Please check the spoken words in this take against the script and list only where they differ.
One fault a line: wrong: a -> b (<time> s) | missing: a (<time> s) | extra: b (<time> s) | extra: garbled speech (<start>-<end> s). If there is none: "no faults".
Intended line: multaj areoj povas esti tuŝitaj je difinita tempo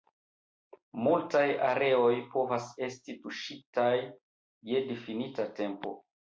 no faults